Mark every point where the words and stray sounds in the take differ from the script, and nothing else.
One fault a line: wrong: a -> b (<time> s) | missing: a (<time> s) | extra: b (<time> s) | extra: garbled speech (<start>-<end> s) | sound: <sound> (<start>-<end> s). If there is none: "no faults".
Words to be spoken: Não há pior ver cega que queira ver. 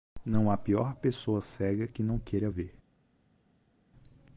wrong: ver -> pessoa (0.9 s)
extra: não (2.0 s)